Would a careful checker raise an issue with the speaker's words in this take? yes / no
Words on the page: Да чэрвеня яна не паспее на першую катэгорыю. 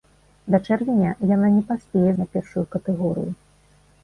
no